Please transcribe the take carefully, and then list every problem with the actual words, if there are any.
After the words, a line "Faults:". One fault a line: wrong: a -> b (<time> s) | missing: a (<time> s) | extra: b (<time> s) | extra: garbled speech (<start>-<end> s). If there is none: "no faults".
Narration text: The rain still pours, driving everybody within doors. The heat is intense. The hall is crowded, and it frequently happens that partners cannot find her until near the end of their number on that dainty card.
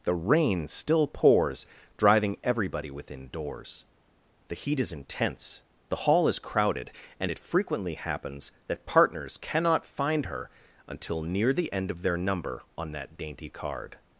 The rain still pours, driving everybody within doors. The heat is intense. The hall is crowded, and it frequently happens that partners cannot find her until near the end of their number on that dainty card.
Faults:
no faults